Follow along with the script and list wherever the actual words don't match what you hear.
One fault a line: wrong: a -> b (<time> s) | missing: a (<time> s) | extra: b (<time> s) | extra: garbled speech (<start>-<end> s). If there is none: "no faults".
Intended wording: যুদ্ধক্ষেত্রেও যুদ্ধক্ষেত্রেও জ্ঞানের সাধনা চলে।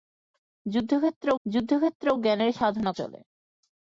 no faults